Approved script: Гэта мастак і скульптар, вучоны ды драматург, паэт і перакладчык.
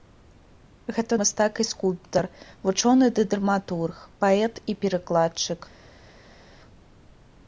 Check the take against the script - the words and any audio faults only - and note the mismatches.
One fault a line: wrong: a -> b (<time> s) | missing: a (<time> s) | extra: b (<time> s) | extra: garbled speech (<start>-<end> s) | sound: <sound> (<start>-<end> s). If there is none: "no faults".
no faults